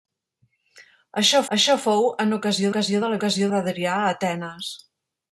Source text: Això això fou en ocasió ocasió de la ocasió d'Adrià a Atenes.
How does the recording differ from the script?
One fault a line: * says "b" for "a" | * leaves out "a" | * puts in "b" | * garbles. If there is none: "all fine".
all fine